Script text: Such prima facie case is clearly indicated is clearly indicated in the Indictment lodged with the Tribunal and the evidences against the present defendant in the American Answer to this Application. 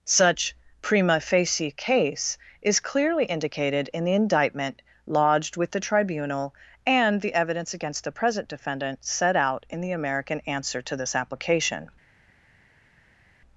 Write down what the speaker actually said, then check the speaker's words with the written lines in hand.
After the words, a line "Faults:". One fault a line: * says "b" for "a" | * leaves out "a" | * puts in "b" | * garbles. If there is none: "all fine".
Such prima facie case is clearly indicated in the Indictment lodged with the Tribunal and the evidence against the present defendant set out in the American Answer to this Application.
Faults:
* leaves out "is clearly indicated"
* says "evidence" for "evidences"
* puts in "set out"